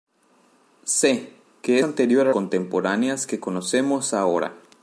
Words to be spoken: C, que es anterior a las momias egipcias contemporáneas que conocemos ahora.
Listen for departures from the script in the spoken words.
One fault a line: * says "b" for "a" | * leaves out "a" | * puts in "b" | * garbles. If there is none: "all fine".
* leaves out "es"
* leaves out "las momias egipcias"